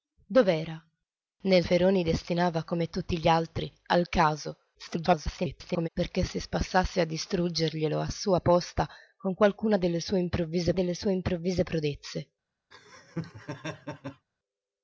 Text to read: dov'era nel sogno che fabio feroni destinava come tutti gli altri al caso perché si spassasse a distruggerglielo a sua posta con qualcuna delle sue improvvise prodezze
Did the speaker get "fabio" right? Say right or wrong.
wrong